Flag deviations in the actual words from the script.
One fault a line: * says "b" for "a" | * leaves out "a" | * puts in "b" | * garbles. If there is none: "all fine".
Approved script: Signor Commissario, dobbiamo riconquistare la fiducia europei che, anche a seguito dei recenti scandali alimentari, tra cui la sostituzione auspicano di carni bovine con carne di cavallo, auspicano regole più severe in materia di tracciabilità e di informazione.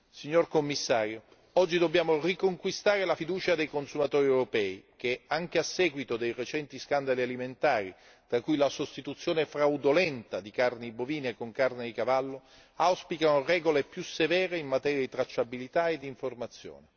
* puts in "oggi"
* puts in "dei consumatori"
* says "fraudolenta" for "auspicano"